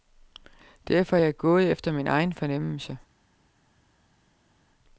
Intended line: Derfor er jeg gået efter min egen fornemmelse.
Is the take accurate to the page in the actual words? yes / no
yes